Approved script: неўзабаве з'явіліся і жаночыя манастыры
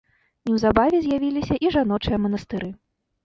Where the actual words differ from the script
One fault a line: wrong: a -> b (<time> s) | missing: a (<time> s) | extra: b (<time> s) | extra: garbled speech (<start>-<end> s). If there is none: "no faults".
no faults